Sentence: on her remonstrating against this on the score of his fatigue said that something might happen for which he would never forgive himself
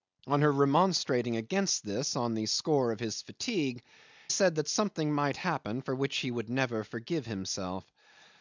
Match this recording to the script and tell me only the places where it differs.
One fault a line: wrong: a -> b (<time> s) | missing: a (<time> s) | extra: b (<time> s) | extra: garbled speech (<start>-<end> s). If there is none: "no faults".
no faults